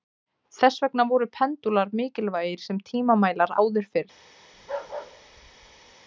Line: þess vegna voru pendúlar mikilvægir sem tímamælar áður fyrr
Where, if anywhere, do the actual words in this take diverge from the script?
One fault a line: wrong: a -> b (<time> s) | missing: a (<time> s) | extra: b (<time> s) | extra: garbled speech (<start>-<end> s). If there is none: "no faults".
no faults